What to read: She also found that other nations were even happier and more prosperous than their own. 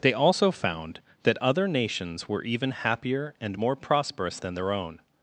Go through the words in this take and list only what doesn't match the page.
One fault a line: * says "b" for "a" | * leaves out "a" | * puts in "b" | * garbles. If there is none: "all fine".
* says "They" for "She"